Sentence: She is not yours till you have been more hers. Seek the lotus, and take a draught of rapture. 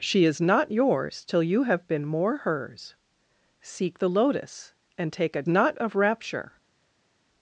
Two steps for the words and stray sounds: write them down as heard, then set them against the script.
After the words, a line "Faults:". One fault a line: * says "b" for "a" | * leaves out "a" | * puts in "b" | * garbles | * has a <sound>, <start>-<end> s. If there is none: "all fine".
She is not yours till you have been more hers. Seek the lotus, and take a not of rapture.
Faults:
* says "not" for "draught"